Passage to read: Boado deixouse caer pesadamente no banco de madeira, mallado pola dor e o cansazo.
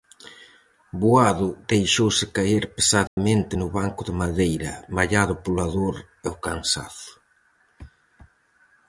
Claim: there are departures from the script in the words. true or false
false